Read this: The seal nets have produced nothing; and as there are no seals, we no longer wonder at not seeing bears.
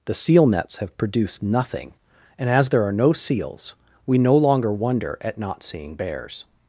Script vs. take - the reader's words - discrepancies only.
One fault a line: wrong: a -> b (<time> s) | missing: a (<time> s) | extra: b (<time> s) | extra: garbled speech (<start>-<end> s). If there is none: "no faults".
no faults